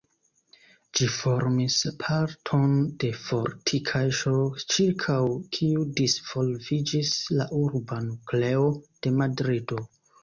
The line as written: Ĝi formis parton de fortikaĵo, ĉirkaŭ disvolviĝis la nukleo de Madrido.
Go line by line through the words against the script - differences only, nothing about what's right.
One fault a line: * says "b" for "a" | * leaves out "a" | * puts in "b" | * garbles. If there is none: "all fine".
* puts in "kiu"
* puts in "urba"